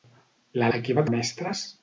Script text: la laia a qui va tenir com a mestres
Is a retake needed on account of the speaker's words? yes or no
yes